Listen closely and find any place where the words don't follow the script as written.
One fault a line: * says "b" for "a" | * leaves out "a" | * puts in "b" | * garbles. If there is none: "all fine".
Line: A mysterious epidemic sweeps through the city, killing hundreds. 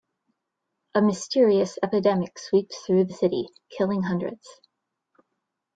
all fine